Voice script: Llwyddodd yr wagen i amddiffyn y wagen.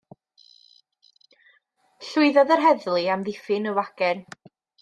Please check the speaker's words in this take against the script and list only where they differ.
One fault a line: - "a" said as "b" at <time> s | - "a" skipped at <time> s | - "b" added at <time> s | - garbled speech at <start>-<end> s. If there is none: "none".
- "wagen" said as "heddlu" at 2.7 s